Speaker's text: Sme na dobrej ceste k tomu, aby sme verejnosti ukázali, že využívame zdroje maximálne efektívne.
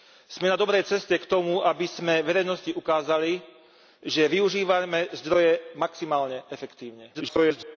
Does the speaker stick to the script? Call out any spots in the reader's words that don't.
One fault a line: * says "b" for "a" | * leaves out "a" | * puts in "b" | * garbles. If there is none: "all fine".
* garbles